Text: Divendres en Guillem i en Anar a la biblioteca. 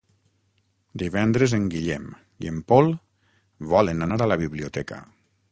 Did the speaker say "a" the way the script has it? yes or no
yes